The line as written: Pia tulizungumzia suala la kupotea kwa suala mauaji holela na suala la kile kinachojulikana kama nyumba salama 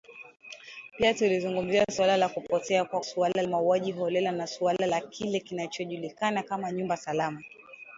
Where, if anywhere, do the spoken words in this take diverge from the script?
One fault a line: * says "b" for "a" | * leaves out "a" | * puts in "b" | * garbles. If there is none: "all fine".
all fine